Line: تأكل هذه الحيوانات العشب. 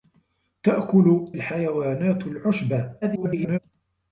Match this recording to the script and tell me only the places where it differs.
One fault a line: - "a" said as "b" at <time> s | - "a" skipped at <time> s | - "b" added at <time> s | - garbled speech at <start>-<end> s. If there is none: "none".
- "هذه" skipped at 1.4 s
- garbled speech at 3.0-3.6 s